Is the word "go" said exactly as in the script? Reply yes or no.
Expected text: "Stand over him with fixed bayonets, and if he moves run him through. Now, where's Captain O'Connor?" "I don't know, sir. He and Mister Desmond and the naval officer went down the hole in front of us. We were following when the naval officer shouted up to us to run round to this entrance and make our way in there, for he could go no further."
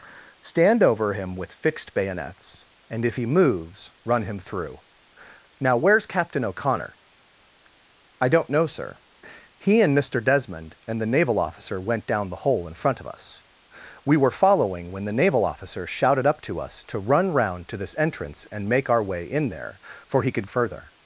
no